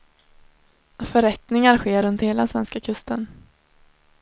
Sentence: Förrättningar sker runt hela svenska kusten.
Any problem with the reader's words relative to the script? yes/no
no